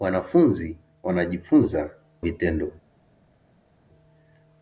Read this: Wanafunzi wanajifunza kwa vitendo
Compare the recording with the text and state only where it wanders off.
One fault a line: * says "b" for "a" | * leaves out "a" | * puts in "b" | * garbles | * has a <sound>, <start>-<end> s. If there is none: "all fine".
* leaves out "kwa"